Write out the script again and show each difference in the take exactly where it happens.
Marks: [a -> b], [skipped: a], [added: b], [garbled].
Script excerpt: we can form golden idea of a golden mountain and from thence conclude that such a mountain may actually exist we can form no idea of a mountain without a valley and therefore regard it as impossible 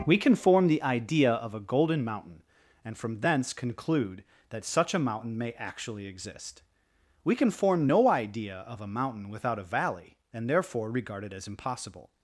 we can form [golden -> the] idea of a golden mountain and from thence conclude that such a mountain may actually exist we can form no idea of a mountain without a valley and therefore regard it as impossible